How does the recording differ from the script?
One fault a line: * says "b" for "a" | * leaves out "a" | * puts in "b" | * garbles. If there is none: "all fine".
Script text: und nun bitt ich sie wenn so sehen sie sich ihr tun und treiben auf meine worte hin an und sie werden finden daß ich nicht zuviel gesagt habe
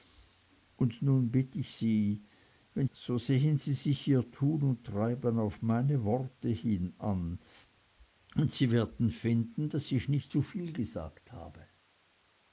all fine